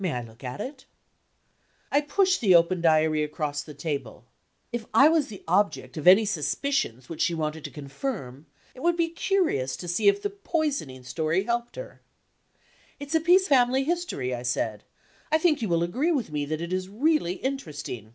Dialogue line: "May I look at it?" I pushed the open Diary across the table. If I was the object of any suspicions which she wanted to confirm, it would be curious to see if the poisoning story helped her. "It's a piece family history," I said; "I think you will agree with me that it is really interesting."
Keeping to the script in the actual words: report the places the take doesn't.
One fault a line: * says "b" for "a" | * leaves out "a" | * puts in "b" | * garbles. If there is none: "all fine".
all fine